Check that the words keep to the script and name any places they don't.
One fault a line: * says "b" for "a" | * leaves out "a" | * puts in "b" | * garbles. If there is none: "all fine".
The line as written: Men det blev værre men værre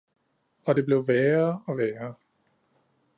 * says "Og" for "Men"
* says "og" for "men"